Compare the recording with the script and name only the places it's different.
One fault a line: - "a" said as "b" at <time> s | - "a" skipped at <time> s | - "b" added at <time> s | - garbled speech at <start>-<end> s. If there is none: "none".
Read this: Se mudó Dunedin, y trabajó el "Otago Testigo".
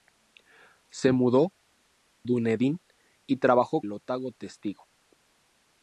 none